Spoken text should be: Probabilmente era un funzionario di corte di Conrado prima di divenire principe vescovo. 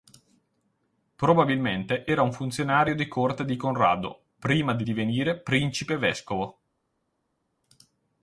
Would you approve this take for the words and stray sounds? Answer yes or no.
yes